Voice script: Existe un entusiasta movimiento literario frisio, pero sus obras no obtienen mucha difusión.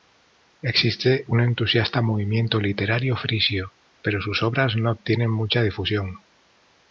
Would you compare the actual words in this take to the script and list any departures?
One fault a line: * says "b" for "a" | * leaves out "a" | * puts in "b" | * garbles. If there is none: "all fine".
all fine